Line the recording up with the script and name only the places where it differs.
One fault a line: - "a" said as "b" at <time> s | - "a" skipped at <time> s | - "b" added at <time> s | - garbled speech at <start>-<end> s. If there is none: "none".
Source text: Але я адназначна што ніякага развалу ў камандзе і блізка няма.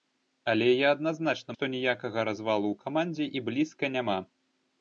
none